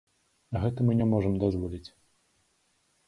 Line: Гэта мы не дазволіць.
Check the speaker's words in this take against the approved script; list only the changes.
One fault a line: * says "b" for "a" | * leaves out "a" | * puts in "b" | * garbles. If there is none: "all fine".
* puts in "можам"